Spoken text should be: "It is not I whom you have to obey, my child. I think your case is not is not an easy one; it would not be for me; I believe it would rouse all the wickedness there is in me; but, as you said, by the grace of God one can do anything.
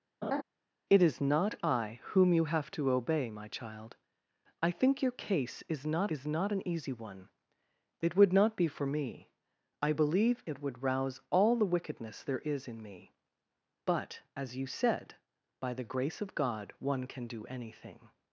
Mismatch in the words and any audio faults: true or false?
true